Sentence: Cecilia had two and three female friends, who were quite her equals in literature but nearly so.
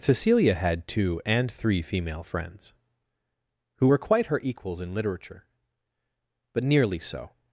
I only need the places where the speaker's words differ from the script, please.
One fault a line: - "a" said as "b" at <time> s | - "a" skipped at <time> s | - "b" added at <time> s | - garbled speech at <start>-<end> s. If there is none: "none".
none